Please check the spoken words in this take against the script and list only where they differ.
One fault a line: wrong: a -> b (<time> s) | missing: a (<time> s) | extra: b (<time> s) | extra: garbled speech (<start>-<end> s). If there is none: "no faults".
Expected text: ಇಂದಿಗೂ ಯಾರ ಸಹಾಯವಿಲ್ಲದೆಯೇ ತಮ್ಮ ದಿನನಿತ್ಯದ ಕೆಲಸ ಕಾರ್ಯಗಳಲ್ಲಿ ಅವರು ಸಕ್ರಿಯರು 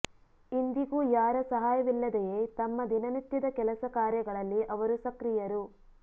no faults